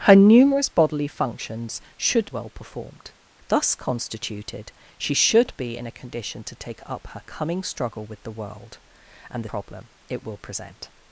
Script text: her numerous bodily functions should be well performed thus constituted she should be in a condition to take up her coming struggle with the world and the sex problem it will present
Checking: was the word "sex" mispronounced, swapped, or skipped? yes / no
yes